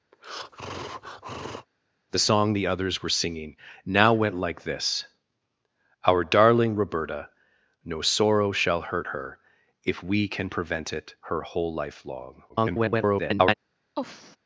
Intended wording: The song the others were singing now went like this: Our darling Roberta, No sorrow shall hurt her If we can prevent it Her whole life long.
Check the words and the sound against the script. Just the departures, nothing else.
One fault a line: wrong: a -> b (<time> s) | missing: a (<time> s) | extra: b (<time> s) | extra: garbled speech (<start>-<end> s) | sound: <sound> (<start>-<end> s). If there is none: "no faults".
sound: breath (0.1-1.7 s)
extra: garbled speech (12.5-13.5 s)
sound: sigh (13.9-14.4 s)